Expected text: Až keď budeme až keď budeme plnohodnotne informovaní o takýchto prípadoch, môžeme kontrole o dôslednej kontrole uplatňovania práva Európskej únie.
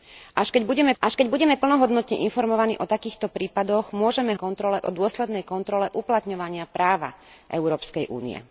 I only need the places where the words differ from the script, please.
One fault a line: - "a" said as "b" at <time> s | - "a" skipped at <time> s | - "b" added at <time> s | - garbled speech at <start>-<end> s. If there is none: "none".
none